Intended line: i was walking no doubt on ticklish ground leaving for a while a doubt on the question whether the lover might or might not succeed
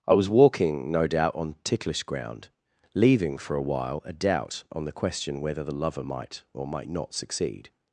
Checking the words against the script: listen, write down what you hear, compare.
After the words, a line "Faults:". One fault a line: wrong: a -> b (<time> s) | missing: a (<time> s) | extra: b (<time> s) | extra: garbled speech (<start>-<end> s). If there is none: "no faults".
i was walking no doubt on ticklish ground leaving for a while a doubt on the question whether the lover might or might not succeed
Faults:
no faults